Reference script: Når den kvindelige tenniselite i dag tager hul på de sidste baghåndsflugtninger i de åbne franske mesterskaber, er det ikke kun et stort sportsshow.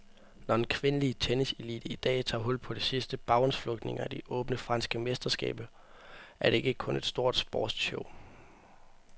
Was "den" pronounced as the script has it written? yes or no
yes